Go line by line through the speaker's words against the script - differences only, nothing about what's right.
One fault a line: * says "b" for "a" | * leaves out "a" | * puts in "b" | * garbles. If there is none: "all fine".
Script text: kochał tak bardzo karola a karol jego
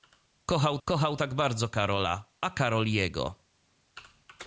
* puts in "kochał"